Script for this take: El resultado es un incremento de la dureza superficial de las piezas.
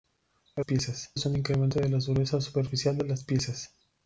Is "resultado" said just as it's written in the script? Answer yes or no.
no